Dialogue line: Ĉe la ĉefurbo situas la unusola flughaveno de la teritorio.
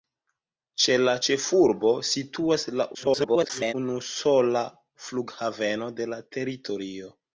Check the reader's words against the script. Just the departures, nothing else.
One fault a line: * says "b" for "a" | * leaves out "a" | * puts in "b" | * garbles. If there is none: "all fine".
* garbles